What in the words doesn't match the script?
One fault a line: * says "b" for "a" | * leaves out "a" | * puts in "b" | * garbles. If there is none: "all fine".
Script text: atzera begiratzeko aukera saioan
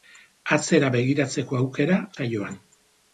all fine